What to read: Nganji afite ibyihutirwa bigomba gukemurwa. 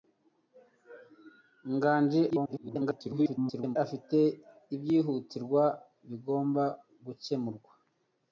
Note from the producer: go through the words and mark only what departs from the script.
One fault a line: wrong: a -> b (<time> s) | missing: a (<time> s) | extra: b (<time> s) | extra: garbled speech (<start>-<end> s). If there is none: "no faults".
extra: garbled speech (2.3-3.8 s)